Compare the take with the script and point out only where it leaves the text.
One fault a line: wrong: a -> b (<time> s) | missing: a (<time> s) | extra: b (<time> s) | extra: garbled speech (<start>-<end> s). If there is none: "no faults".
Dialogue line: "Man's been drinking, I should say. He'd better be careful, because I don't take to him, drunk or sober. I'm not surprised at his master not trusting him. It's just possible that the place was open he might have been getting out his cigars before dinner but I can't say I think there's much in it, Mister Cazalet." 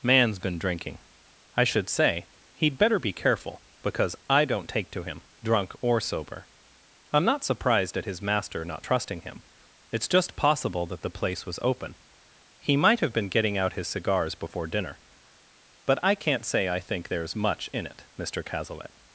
no faults